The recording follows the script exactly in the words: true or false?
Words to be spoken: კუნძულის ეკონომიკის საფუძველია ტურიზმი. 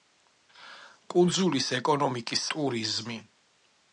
false